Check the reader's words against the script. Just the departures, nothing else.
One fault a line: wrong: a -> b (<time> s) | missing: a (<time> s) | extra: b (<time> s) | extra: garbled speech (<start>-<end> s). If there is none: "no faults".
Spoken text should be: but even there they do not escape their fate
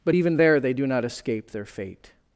no faults